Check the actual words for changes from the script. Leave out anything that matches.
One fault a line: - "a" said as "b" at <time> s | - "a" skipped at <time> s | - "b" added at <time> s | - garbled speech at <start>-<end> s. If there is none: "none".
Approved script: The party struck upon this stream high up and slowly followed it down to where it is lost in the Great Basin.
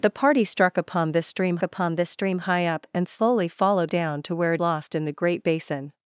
- "upon this stream" added at 1.6 s
- "it" skipped at 3.9 s
- "is" skipped at 4.6 s